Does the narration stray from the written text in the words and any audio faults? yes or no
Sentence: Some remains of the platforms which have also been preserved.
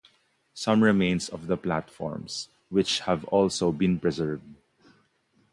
no